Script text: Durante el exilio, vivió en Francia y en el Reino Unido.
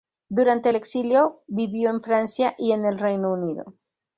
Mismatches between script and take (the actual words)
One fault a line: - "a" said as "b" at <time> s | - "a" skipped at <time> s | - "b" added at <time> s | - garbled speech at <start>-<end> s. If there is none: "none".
none